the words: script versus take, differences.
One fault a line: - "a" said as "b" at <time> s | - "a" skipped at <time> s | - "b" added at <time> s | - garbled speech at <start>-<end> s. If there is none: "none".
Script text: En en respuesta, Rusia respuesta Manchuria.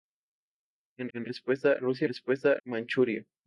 none